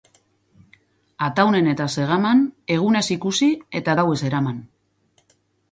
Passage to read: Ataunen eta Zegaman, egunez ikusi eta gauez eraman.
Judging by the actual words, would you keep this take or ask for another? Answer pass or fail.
pass